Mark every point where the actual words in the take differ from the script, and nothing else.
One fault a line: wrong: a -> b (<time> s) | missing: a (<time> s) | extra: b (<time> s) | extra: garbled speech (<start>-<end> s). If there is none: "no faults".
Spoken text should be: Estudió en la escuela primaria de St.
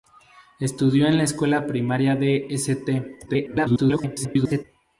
extra: garbled speech (3.3-4.6 s)